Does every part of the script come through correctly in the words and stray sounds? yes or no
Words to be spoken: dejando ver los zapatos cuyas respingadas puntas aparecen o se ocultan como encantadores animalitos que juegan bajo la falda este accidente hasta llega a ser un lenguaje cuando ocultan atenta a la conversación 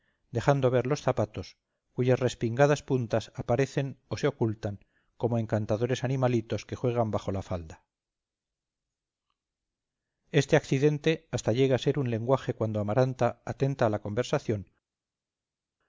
no